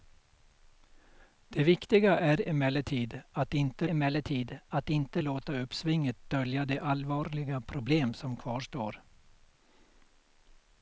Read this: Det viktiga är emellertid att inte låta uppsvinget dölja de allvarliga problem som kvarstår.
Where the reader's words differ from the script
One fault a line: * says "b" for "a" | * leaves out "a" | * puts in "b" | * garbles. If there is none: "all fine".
* puts in "emellertid att inte"